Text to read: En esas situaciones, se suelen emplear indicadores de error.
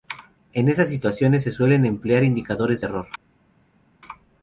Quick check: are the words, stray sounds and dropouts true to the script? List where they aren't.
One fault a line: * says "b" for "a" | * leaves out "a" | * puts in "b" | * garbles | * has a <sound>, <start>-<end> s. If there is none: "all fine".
all fine